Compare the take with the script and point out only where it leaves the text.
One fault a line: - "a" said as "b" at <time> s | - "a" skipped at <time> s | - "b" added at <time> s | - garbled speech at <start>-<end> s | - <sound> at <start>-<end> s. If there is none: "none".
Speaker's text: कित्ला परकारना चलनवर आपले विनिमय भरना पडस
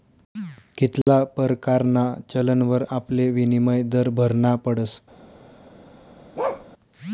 - dropout at 1.0-1.1 s
- "दर" added at 3.9 s
- bark at 6.4-6.7 s